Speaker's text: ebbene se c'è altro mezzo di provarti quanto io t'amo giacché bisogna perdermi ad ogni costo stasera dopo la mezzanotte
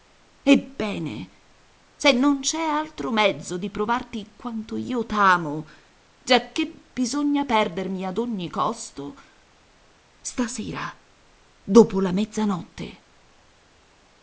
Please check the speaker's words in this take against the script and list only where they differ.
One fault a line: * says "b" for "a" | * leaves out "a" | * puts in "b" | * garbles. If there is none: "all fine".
* puts in "non"